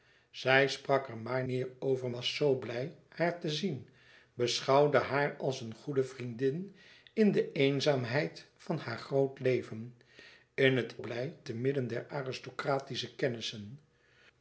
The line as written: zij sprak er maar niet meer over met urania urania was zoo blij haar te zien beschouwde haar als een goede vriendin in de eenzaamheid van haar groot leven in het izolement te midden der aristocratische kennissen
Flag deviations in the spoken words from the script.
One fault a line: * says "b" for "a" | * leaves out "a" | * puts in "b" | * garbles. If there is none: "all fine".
* leaves out "niet"
* leaves out "met urania urania"
* says "blij" for "izolement"